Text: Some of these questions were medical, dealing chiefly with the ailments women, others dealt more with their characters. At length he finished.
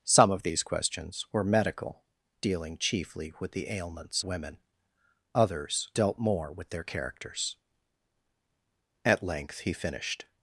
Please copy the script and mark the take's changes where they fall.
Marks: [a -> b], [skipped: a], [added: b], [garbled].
Some of these questions were medical, dealing chiefly with the ailments women, others dealt more with their characters. At length he finished.